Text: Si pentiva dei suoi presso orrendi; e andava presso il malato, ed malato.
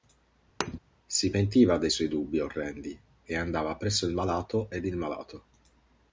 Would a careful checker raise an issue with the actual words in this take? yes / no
yes